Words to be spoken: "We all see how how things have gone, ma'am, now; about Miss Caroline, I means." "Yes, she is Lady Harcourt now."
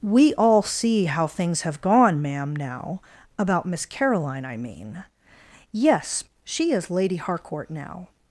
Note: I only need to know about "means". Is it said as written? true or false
false